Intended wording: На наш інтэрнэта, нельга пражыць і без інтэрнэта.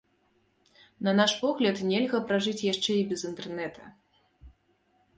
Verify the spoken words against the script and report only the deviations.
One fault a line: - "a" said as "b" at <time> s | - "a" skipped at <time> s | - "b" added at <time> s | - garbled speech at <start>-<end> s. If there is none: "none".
- "інтэрнэта" said as "погляд" at 1.4 s
- "яшчэ" added at 2.7 s